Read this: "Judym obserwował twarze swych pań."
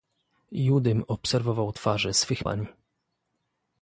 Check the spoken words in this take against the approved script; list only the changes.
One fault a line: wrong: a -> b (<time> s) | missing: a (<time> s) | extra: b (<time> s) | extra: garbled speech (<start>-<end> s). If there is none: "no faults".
no faults